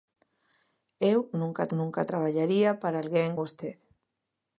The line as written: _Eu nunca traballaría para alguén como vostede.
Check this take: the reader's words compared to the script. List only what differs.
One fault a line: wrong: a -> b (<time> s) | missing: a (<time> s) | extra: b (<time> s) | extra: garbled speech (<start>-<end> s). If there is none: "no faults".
extra: nunca (1.8 s)
missing: como (3.3 s)